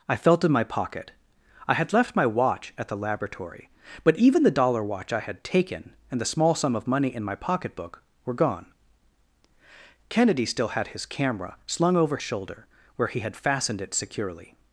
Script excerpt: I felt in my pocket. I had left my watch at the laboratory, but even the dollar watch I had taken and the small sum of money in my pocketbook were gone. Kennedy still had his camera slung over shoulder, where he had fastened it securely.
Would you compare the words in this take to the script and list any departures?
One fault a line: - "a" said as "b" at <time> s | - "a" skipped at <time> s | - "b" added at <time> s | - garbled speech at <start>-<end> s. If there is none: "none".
none